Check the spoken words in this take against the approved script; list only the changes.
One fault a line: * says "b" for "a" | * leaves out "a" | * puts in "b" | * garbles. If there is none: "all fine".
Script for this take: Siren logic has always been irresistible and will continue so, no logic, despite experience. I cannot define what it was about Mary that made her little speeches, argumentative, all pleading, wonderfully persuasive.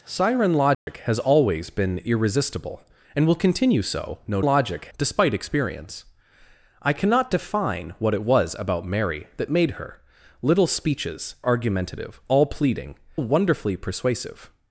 all fine